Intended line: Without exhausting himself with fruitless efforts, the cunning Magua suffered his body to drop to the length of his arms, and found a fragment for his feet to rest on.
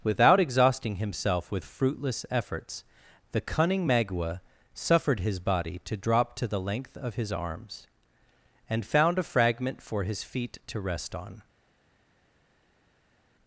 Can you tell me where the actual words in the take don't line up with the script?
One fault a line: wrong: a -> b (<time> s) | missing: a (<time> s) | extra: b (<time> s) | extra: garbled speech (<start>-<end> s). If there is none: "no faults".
no faults